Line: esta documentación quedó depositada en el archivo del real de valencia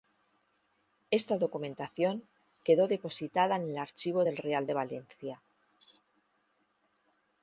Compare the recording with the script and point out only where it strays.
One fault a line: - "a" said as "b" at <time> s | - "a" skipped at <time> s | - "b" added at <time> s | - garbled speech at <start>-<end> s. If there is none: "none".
none